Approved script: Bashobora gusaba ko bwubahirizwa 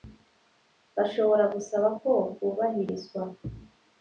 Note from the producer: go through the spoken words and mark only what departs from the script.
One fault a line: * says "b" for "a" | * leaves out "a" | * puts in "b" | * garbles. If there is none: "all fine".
all fine